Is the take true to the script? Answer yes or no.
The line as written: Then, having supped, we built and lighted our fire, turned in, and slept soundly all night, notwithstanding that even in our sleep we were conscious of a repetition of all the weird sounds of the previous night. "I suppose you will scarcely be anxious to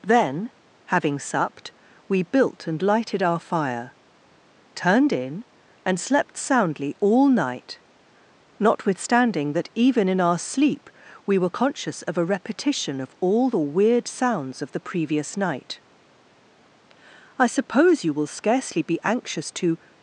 yes